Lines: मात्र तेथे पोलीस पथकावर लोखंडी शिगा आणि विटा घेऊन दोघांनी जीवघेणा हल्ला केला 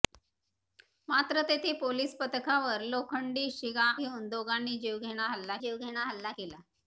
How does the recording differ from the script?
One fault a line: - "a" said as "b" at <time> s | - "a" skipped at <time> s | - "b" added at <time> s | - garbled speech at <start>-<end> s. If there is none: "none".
- "आणि विटा घेऊन दोघांनी" said as "घेऊन दोघांनी जीवघेणा हल्ला" at 3.9 s